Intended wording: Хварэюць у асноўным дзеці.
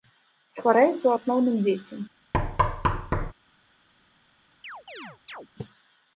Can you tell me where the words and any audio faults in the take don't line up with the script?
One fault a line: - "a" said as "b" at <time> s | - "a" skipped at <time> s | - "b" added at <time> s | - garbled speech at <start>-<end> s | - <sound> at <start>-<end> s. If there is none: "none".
- thud at 2.3-3.3 s
- chirp at 4.6-5.5 s